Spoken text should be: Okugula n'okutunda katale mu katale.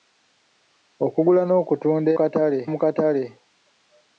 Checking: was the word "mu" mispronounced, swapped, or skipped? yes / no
no